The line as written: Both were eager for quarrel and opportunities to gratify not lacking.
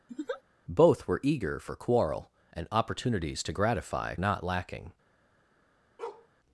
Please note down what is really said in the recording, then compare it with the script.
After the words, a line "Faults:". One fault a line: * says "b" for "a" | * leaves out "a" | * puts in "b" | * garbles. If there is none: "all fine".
Both were eager for quarrel and opportunities to gratify not lacking.
Faults:
all fine